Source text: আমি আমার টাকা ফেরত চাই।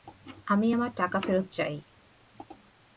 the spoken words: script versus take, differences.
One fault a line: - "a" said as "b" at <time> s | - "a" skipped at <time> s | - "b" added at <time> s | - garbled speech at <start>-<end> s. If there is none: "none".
none